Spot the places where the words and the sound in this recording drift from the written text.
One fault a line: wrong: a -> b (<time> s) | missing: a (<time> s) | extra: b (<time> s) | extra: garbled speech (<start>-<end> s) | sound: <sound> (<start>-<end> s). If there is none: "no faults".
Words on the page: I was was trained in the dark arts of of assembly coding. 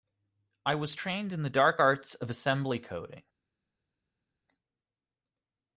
missing: was (0.9 s)
missing: of (2.3 s)